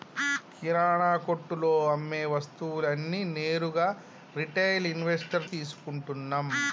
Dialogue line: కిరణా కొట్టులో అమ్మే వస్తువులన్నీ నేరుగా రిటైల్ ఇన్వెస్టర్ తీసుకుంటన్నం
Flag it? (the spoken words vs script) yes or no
no